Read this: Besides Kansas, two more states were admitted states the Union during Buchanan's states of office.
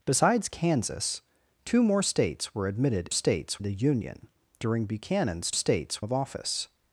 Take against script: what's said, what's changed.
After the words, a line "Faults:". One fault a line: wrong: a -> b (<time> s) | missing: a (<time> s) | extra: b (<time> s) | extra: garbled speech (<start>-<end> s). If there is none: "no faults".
Besides Kansas, two more states were admitted states the Union during Buchanan's states of office.
Faults:
no faults